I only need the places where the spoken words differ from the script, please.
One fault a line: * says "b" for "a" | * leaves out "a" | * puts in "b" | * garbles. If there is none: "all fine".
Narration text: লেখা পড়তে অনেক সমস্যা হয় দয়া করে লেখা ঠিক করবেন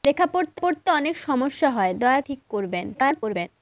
* puts in "পড়তে"
* leaves out "করে লেখা"
* garbles